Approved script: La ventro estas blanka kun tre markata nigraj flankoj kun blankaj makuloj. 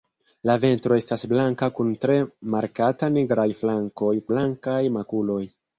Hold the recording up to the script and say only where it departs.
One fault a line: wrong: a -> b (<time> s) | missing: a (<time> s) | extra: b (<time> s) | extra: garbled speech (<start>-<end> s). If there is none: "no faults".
missing: kun (4.1 s)